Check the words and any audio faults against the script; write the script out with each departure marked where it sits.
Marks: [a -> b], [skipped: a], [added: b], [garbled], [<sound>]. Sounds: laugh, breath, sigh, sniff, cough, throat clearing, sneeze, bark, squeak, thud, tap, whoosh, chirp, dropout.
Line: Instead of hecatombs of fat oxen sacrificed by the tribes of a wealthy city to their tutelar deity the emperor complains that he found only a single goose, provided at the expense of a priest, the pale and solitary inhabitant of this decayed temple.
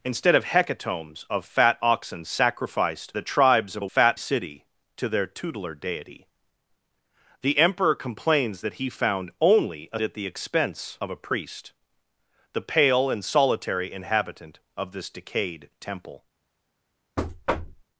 Instead of hecatombs of fat oxen sacrificed [skipped: by] the tribes of a [wealthy -> fat] city to their tutelar deity the emperor complains that he found only a [skipped: single goose, provided] at the expense of a priest, the pale and solitary inhabitant of this decayed temple. [thud]